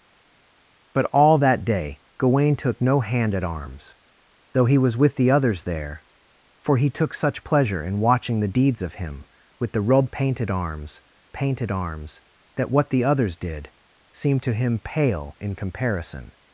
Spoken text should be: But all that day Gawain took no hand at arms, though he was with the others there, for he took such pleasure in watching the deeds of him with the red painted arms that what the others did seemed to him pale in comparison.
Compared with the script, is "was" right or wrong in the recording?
right